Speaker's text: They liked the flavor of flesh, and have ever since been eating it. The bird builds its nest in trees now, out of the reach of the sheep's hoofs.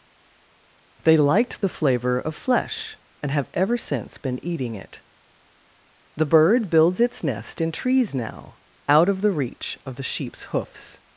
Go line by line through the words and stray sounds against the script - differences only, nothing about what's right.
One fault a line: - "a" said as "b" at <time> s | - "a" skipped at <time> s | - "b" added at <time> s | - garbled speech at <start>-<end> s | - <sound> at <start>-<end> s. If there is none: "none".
none